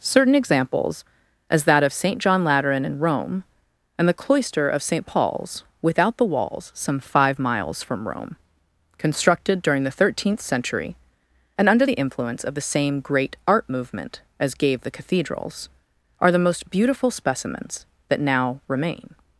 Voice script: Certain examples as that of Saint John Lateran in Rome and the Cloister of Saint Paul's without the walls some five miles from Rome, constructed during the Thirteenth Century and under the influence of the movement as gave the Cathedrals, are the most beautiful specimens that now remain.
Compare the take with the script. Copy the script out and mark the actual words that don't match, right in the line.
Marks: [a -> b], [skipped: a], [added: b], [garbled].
Certain examples as that of Saint John Lateran in Rome and the Cloister of Saint Paul's without the walls some five miles from Rome, constructed during the Thirteenth Century and under the influence of the [added: same great art] movement as gave the Cathedrals, are the most beautiful specimens that now remain.